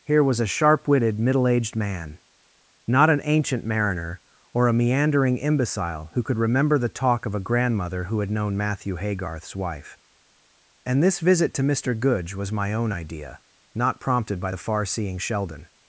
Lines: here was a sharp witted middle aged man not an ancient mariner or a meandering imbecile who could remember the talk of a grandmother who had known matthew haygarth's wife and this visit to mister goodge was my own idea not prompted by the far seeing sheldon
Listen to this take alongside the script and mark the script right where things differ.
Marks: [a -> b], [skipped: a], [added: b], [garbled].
here was a sharp witted middle aged man not an ancient mariner or a meandering imbecile who could remember the talk of a grandmother who had known matthew haygarth's wife and this visit to mister goodge was my own idea not prompted by the far seeing sheldon